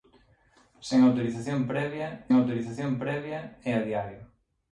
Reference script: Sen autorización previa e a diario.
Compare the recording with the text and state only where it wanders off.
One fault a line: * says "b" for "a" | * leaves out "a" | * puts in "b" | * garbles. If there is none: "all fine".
* puts in "autorización previa"